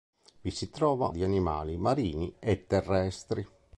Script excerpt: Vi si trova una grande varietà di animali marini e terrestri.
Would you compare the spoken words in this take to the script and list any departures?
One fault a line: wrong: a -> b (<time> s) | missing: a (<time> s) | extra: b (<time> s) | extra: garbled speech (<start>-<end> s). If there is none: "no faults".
missing: una grande varietà (1.1 s)